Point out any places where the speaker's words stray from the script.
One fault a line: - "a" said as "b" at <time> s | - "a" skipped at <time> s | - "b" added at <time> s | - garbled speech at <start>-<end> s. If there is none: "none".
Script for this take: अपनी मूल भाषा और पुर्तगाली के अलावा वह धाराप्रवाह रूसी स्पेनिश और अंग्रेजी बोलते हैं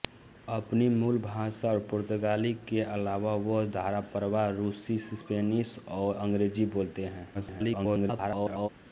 - garbled speech at 7.3-8.7 s